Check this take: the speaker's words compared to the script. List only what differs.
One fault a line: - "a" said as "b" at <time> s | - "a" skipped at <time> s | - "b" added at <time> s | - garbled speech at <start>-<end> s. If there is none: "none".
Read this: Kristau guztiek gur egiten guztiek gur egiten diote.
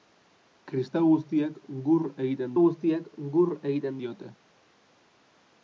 none